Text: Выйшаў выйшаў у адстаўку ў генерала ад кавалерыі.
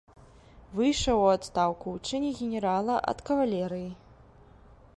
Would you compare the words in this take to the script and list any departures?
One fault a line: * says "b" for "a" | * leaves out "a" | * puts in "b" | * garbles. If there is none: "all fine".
* leaves out "выйшаў"
* puts in "чыне"